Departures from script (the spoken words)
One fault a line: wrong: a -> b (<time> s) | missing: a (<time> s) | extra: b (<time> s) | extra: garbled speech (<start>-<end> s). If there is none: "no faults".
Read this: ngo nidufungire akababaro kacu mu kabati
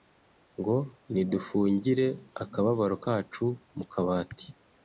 no faults